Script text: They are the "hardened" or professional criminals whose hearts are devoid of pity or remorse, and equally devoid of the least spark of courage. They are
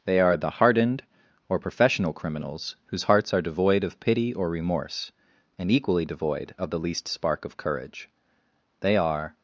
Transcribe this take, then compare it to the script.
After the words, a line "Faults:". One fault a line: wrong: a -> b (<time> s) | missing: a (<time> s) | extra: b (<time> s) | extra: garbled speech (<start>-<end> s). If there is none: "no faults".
They are the "hardened" or professional criminals whose hearts are devoid of pity or remorse, and equally devoid of the least spark of courage. They are
Faults:
no faults